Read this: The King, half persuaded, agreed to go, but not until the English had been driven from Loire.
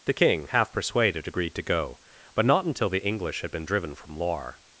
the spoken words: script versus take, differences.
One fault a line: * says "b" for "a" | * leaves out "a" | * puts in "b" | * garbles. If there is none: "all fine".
all fine